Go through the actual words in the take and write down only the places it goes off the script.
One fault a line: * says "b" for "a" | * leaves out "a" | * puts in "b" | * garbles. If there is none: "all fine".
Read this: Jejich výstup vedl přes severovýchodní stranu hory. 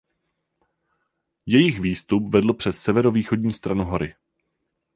all fine